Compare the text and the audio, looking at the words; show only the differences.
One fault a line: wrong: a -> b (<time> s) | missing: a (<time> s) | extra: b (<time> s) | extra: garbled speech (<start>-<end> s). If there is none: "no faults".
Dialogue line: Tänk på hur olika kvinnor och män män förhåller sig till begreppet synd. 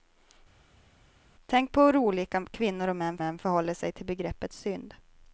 no faults